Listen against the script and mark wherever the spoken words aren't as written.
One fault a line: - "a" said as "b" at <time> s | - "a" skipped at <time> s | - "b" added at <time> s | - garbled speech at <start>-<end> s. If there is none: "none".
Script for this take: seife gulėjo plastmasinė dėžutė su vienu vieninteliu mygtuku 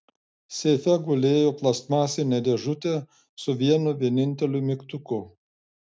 none